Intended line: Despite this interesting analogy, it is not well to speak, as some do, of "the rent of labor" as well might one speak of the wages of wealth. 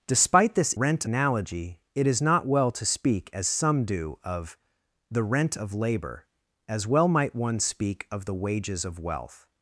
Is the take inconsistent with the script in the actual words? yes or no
yes